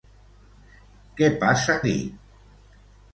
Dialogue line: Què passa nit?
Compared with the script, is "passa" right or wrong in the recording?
right